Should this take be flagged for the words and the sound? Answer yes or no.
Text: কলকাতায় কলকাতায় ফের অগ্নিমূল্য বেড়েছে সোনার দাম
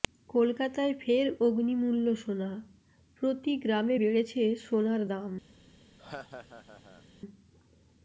yes